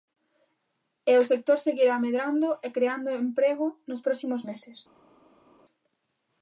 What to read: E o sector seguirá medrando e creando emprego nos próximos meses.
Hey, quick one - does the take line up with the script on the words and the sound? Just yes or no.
yes